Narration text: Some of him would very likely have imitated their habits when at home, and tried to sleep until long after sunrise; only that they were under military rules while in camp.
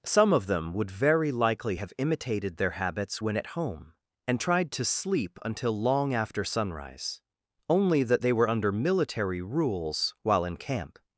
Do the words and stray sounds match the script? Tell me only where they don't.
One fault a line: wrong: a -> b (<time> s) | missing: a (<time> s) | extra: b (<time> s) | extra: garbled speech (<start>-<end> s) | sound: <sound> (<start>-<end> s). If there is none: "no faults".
wrong: him -> them (0.5 s)